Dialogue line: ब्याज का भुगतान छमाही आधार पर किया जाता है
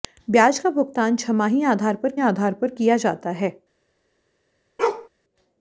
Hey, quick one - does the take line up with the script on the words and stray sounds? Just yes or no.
no